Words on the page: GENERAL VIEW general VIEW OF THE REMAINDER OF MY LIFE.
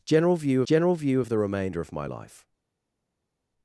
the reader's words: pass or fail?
pass